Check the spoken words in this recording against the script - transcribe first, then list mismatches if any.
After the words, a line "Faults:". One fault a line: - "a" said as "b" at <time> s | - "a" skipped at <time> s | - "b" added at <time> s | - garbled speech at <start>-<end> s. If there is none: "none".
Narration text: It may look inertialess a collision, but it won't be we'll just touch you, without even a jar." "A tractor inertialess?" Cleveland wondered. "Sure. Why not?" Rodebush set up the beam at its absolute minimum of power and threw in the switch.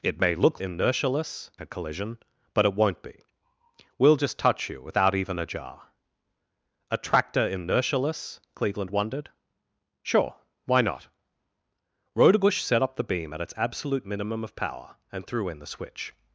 It may look inertialess a collision, but it won't be we'll just touch you, without even a jar." "A tractor inertialess?" Cleveland wondered. "Sure. Why not?" Rodebush set up the beam at its absolute minimum of power and threw in the switch.
Faults:
none